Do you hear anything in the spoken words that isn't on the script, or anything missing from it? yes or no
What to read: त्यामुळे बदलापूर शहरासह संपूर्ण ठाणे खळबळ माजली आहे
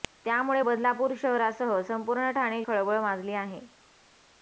no